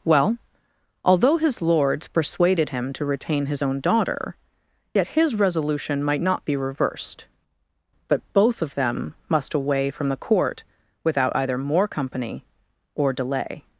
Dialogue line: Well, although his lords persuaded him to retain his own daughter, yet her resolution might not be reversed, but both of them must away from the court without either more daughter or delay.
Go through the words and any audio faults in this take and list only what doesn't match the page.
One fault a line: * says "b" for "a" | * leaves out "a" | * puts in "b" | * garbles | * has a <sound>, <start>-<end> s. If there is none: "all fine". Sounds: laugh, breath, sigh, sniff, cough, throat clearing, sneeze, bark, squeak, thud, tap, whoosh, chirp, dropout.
* says "his" for "her"
* says "company" for "daughter"